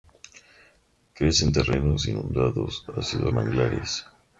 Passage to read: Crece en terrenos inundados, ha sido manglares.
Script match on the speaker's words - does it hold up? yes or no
yes